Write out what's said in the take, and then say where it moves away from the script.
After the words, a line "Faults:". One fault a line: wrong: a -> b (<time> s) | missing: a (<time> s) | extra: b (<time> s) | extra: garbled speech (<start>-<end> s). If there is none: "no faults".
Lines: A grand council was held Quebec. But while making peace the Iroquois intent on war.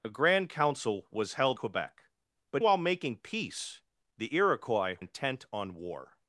A grand council was held Quebec. But while making peace the Iroquois intent on war.
Faults:
no faults